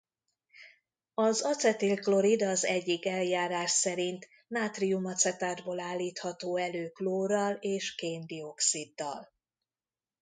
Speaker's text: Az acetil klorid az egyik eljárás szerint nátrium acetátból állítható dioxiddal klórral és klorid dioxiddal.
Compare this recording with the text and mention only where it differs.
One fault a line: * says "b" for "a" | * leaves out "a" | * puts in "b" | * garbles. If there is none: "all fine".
* says "elő" for "dioxiddal"
* says "kén" for "klorid"